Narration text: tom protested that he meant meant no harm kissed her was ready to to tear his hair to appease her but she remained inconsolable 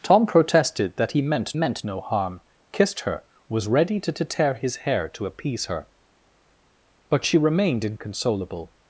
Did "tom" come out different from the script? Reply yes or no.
no